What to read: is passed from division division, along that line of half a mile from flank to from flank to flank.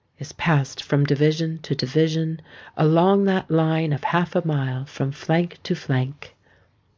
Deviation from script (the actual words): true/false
true